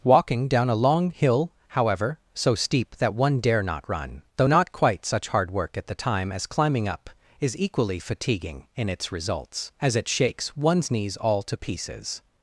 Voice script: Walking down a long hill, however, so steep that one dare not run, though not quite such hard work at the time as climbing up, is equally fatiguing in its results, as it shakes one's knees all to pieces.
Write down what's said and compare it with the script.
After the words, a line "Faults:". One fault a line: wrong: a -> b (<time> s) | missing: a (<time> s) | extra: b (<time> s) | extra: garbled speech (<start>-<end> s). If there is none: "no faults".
Walking down a long hill, however, so steep that one dare not run, though not quite such hard work at the time as climbing up, is equally fatiguing in its results, as it shakes one's knees all to pieces.
Faults:
no faults